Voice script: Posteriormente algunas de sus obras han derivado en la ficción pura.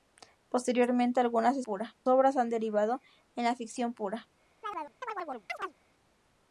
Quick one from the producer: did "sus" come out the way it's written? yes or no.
no